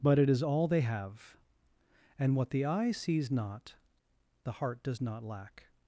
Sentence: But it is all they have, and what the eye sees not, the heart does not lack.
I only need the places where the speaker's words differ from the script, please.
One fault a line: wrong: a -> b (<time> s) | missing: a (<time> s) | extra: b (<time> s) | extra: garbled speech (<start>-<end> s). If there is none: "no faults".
no faults